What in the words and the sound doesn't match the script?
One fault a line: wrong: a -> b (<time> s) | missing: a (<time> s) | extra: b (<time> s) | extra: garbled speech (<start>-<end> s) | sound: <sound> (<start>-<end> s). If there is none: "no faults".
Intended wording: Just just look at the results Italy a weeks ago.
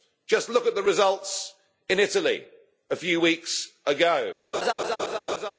missing: just (0.5 s)
extra: in (1.9 s)
extra: few (3.0 s)
sound: laugh (4.5-5.5 s)